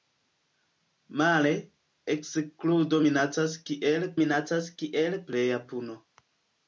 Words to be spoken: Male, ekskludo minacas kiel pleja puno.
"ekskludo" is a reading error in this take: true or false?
false